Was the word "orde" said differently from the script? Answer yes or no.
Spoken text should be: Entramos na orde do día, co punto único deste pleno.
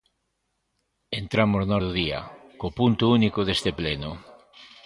yes